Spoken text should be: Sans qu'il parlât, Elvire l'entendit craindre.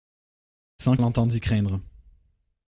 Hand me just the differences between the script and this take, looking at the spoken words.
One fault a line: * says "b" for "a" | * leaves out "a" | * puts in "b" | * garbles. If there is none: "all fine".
* leaves out "qu'il parlât Elvire"